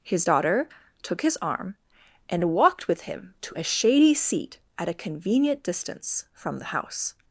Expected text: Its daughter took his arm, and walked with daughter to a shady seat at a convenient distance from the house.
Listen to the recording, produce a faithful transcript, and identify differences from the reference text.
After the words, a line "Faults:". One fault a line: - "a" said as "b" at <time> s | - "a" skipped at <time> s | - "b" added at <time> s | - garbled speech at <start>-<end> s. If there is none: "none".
His daughter took his arm, and walked with him to a shady seat at a convenient distance from the house.
Faults:
- "Its" said as "His" at 0.0 s
- "daughter" said as "him" at 3.0 s